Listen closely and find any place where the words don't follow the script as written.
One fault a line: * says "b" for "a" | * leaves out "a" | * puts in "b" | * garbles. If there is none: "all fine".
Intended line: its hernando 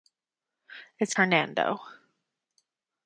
all fine